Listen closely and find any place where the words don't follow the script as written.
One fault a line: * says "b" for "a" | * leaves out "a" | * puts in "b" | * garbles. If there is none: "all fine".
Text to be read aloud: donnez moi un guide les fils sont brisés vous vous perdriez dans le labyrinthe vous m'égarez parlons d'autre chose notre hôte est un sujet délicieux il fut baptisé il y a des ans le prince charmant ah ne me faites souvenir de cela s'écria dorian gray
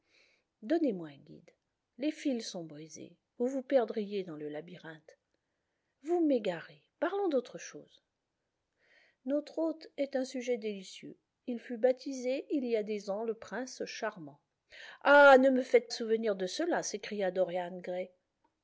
all fine